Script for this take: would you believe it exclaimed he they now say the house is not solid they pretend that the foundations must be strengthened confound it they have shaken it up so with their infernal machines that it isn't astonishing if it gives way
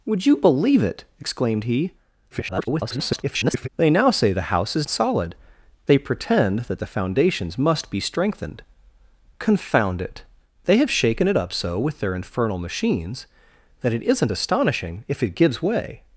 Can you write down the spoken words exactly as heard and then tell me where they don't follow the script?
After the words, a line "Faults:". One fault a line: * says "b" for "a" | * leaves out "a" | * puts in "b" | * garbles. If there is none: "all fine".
would you believe it exclaimed he [garbled] they now say the house is solid they pretend that the foundations must be strengthened confound it they have shaken it up so with their infernal machines that it isn't astonishing if it gives way
Faults:
* garbles
* leaves out "not"